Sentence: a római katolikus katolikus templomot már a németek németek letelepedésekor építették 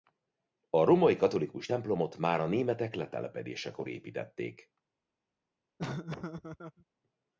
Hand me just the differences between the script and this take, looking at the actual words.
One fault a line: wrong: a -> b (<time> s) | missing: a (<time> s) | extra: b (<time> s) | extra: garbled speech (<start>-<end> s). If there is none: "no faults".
missing: katolikus (1.7 s)
missing: németek (2.9 s)